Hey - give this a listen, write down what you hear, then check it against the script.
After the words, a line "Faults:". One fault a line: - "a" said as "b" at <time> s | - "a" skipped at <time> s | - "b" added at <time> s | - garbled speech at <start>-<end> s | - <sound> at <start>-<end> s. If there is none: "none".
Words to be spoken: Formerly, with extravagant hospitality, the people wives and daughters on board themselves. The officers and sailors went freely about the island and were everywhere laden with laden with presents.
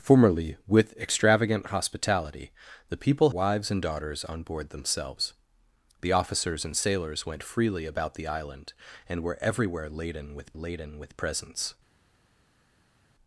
Formerly, with extravagant hospitality, the people wives and daughters on board themselves. The officers and sailors went freely about the island and were everywhere laden with laden with presents.
Faults:
none